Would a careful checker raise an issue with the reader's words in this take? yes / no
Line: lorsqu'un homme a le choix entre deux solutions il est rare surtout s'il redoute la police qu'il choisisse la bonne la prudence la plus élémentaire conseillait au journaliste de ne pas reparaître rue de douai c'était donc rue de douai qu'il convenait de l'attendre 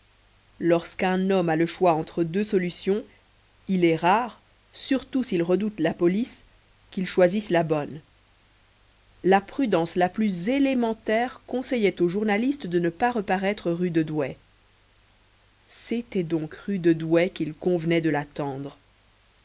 no